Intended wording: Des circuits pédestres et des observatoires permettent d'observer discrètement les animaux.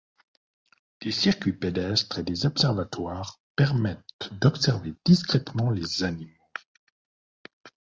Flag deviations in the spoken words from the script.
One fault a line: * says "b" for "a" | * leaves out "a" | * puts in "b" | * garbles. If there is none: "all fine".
all fine